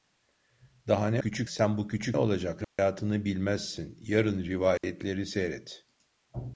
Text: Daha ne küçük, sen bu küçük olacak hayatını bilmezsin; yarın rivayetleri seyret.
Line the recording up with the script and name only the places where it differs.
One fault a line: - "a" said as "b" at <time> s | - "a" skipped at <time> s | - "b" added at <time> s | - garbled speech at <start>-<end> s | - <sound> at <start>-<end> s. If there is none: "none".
- dropout at 2.6-2.8 s
- dropout at 4.8-4.8 s